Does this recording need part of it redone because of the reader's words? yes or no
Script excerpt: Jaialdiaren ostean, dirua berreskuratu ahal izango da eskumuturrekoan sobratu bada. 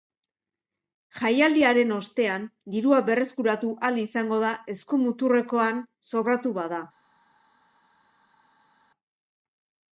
no